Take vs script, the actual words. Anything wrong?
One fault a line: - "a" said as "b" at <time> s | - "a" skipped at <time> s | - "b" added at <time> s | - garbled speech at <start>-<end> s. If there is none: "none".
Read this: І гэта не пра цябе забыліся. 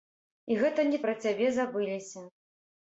none